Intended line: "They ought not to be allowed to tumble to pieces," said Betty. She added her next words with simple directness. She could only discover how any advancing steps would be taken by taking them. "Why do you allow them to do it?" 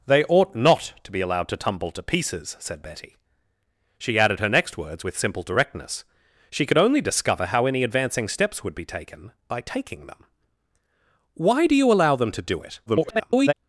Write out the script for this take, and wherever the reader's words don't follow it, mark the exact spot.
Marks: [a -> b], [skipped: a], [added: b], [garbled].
"They ought not to be allowed to tumble to pieces," said Betty. She added her next words with simple directness. She could only discover how any advancing steps would be taken by taking them. "Why do you allow them to do it?" [garbled]